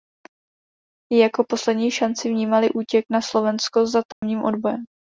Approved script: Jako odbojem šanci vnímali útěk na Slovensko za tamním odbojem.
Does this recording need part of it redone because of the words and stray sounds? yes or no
yes